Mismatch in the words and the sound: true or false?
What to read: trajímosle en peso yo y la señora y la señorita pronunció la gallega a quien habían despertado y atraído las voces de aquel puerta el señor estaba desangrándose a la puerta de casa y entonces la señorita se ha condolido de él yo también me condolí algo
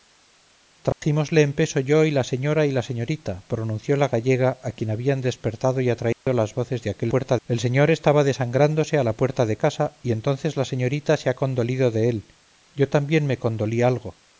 true